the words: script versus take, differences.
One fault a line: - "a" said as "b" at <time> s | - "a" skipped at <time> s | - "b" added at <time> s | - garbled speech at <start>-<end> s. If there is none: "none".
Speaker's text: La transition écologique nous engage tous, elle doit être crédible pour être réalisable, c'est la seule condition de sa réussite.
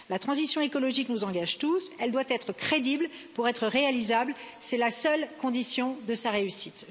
none